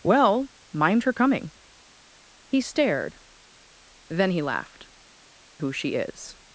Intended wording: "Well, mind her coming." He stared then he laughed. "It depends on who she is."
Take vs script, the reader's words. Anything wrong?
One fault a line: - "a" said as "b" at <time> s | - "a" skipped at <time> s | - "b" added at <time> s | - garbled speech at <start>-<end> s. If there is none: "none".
- "It depends on" skipped at 4.9 s